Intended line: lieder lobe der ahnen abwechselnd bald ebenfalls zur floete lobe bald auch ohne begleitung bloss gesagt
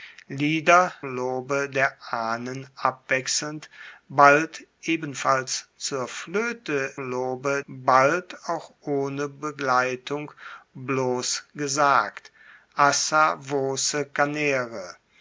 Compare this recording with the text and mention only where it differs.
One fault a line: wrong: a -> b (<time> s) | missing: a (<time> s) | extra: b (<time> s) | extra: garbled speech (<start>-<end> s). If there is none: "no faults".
no faults